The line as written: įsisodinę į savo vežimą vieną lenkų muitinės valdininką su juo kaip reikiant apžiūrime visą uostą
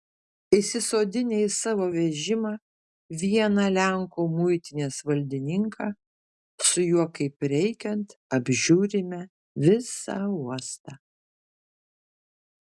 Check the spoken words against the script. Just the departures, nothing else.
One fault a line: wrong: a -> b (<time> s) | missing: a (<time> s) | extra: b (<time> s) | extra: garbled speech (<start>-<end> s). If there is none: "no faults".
no faults